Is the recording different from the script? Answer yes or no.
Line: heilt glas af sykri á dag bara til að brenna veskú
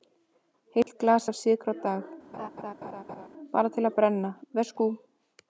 no